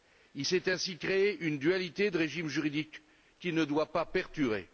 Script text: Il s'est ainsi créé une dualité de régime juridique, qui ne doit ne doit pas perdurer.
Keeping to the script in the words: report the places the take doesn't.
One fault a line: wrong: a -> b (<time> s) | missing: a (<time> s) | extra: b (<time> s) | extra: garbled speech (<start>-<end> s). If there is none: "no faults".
missing: ne doit (3.9 s)